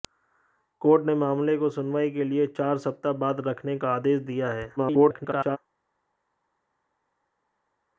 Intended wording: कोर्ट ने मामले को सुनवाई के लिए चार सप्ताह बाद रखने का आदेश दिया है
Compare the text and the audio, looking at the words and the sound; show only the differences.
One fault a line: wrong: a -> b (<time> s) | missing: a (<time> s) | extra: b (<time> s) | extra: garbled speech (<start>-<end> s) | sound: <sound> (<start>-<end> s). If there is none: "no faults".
extra: garbled speech (4.8-5.6 s)